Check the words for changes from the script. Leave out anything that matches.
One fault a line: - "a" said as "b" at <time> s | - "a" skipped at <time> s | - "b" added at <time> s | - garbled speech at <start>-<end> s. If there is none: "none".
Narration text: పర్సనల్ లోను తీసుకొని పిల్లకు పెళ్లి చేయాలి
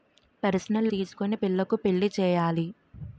- "లోను" skipped at 0.9 s